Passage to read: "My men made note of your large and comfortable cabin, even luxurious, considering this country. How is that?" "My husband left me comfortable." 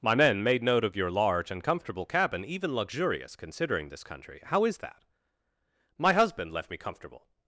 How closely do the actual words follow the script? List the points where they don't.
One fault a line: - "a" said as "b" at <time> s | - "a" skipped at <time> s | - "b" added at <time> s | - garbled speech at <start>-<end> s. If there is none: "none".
none